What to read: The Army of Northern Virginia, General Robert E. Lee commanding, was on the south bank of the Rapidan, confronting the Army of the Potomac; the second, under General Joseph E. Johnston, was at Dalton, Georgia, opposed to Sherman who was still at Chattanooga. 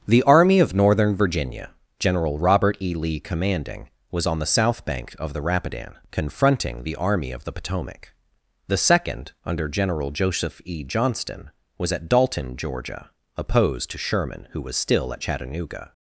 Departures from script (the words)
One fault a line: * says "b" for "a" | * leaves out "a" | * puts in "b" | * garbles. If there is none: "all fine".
all fine